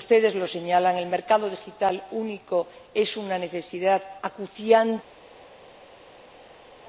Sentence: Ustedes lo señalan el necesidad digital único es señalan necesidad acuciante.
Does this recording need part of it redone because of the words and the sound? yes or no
yes